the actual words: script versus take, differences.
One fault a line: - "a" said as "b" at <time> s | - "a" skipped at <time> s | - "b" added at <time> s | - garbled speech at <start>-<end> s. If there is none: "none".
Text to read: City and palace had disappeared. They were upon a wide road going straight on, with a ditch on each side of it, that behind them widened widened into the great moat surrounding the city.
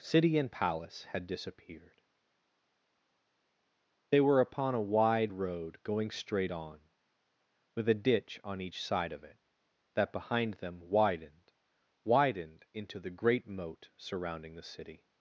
none